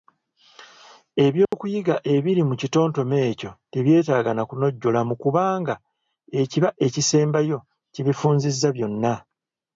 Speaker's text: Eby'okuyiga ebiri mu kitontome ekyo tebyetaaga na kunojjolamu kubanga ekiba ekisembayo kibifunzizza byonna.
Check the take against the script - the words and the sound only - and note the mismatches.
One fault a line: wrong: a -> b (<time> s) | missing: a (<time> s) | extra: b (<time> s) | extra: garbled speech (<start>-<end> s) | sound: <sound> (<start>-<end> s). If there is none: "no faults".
sound: dropout (1.5-1.5 s)